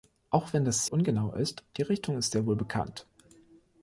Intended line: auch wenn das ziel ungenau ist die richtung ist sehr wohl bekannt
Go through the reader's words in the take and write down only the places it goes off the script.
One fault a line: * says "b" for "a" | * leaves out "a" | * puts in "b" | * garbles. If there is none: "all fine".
* leaves out "ziel"